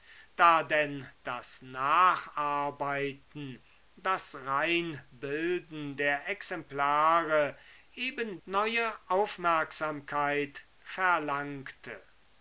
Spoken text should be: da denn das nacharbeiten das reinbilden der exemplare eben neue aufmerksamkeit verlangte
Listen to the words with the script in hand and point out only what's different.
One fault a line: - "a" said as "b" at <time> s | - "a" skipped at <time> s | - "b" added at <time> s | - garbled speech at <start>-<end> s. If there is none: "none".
none